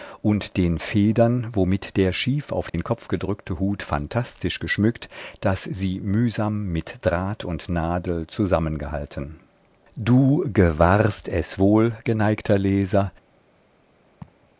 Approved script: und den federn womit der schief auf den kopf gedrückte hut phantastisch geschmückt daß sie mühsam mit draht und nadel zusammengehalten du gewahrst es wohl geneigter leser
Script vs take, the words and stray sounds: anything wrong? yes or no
yes